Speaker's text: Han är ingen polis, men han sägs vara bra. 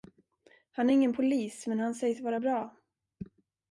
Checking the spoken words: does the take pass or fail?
pass